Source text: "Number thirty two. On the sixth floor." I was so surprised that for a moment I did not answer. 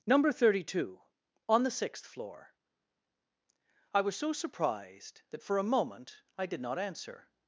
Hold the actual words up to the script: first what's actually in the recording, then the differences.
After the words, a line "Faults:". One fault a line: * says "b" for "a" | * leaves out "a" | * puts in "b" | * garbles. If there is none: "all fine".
"Number thirty two. On the sixth floor." I was so surprised that for a moment I did not answer.
Faults:
all fine